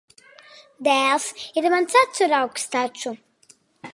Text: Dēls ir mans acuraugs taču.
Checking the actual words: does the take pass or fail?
pass